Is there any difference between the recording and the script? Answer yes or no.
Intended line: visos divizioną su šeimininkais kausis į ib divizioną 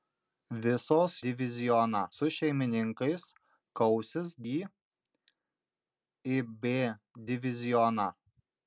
no